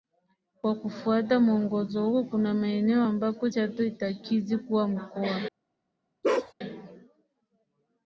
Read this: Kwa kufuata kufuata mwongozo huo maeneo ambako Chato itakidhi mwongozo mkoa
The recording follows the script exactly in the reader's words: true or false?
false